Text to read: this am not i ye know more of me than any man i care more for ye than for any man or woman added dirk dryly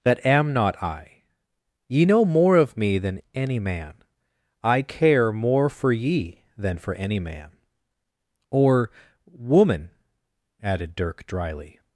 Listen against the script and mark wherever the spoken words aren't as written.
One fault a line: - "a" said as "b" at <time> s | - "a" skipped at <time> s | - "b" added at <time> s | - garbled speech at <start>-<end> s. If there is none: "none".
- "this" said as "that" at 0.0 s